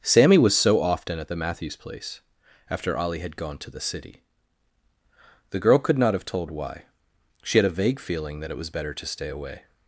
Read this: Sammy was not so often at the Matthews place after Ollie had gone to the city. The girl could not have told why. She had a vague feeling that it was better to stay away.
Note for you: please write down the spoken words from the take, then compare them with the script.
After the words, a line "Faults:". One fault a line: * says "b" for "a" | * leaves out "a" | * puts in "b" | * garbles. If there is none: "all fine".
Sammy was so often at the Matthews place after Ollie had gone to the city. The girl could not have told why. She had a vague feeling that it was better to stay away.
Faults:
* leaves out "not"